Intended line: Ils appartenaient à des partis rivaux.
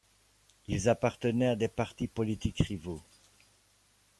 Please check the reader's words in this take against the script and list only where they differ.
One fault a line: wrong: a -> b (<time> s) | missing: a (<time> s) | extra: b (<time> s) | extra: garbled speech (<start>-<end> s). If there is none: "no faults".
extra: politiques (2.1 s)